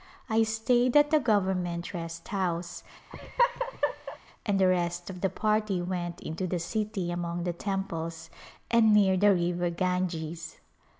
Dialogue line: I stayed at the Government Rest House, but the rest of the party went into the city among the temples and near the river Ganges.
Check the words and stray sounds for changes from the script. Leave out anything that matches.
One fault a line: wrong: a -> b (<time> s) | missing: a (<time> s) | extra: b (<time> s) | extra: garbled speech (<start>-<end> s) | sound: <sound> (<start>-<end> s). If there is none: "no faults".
sound: laugh (3.1-4.2 s)
wrong: but -> and (4.4 s)